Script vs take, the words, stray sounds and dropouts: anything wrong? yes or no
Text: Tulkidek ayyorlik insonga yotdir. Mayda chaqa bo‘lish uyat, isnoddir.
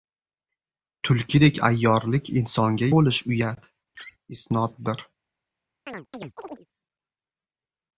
yes